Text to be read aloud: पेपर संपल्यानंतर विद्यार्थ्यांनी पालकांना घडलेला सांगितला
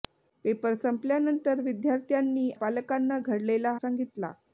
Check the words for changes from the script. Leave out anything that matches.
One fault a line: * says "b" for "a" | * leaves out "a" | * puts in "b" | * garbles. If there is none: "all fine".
all fine